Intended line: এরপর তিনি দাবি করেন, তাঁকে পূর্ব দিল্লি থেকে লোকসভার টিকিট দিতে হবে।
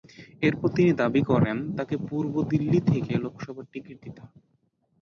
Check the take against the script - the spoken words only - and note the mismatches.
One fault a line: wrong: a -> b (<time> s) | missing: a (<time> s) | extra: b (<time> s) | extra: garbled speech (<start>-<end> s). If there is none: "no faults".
no faults